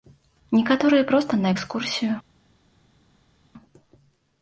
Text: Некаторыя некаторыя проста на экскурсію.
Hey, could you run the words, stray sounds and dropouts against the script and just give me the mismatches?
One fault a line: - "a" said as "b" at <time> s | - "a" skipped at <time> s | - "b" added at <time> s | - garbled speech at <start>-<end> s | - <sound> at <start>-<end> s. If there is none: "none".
- "некаторыя" skipped at 1.0 s